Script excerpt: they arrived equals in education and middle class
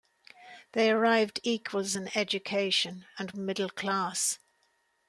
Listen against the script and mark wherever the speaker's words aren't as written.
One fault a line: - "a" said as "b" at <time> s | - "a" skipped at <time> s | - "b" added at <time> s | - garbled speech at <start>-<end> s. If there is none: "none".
none